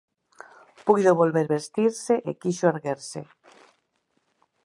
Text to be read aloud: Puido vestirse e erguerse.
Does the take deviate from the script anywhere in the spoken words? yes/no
yes